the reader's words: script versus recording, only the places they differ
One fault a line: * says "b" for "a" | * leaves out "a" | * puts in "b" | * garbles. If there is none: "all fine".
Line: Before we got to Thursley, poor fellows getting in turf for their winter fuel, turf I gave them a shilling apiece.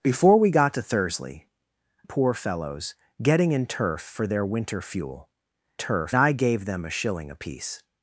all fine